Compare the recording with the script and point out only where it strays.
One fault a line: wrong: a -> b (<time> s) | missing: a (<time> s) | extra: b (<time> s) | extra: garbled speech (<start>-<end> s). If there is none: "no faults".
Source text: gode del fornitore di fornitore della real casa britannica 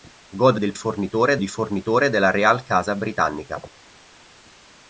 no faults